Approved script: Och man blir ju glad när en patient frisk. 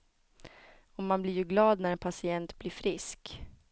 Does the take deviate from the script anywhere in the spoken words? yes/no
yes